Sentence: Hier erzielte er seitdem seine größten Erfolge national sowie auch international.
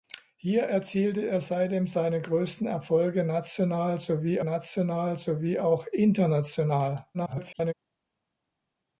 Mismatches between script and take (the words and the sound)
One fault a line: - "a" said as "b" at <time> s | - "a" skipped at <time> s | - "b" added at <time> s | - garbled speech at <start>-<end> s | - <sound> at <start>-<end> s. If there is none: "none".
- "national sowie" added at 4.4 s
- garbled speech at 7.1-7.7 s